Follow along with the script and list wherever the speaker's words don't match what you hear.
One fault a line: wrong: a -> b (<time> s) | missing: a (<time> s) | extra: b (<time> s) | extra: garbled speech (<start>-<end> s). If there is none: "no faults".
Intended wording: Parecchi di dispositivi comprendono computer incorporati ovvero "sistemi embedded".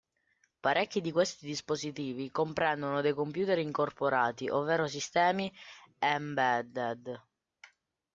extra: questi (1.1 s)
extra: dei (3.0 s)